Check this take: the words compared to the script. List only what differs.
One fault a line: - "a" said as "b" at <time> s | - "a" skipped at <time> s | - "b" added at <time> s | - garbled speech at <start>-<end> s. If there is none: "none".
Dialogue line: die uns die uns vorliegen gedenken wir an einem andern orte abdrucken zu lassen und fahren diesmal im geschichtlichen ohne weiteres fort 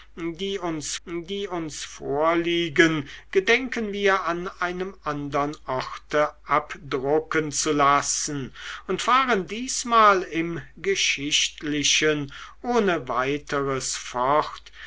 none